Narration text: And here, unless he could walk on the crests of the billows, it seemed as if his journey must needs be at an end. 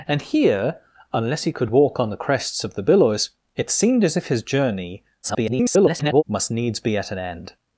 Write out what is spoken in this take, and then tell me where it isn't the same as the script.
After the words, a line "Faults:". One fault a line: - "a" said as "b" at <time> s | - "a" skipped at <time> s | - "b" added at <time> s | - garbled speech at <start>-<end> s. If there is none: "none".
And here, unless he could walk on the crests of the billows, it seemed as if his journey [garbled] must needs be at an end.
Faults:
- garbled speech at 5.2-6.2 s